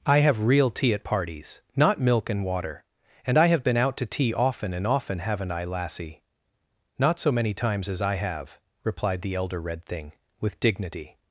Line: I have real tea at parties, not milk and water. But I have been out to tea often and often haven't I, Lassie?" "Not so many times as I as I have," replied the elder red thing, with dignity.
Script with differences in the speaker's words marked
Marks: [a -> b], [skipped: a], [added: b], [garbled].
I have real tea at parties, not milk and water. [But -> And] I have been out to tea often and often haven't I, Lassie?" "Not so many times as I [skipped: as I] have," replied the elder red thing, with dignity.